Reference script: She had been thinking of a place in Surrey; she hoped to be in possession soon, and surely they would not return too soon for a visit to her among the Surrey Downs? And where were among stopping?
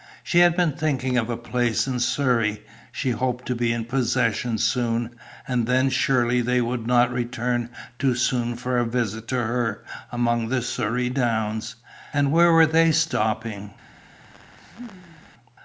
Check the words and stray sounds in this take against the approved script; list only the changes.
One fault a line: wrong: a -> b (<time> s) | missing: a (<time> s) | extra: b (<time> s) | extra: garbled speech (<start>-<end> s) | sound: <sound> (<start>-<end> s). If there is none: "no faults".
extra: then (5.7 s)
wrong: among -> they (12.7 s)
sound: laugh (14.2-15.3 s)